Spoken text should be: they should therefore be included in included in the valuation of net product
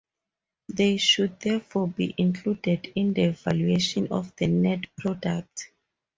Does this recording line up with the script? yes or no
no